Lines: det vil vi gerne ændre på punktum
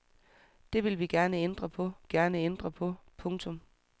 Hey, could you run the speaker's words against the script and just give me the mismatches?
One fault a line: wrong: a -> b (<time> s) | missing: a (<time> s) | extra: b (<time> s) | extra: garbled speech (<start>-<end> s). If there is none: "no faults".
extra: gerne ændre på (2.1 s)